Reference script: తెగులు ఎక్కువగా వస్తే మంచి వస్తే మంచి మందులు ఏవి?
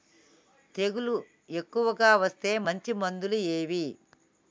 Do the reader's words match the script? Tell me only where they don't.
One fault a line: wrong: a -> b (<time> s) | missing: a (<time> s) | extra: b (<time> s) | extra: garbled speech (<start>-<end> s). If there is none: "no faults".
missing: వస్తే మంచి (2.9 s)